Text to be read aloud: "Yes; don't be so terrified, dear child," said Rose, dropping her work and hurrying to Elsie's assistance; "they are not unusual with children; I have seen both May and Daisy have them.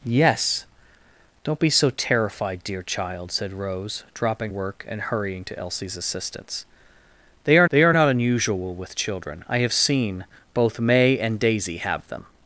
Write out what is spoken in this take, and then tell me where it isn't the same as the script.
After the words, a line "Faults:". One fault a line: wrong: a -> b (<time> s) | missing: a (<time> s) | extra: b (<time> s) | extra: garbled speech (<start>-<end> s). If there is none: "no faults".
"Yes; don't be so terrified, dear child," said Rose, dropping work and hurrying to Elsie's assistance; "they are they are not unusual with children; I have seen both May and Daisy have them.
Faults:
missing: her (4.5 s)
extra: they are (7.7 s)